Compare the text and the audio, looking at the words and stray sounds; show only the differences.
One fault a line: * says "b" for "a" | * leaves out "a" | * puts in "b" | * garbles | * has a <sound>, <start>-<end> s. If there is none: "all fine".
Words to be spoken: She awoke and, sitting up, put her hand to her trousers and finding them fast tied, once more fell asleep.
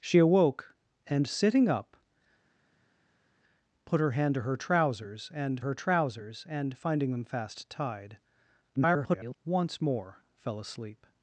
* puts in "her trousers and"
* garbles